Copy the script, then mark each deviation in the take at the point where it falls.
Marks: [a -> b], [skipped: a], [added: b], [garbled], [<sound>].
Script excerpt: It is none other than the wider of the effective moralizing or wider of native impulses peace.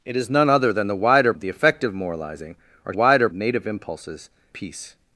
It is none other than the wider of the effective moralizing or wider of native impulses peace.